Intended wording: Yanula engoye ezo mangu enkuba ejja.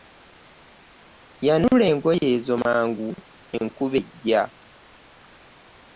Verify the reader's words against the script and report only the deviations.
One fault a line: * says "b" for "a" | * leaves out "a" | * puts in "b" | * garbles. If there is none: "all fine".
all fine